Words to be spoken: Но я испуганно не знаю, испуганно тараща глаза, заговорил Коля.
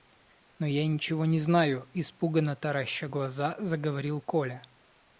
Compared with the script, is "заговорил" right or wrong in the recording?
right